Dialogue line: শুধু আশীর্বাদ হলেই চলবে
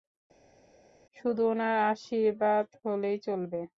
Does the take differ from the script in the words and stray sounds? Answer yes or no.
yes